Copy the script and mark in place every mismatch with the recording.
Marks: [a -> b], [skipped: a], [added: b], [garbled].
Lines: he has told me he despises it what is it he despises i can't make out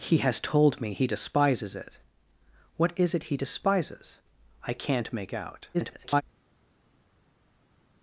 he has told me he despises it what is it he despises i can't make out [garbled]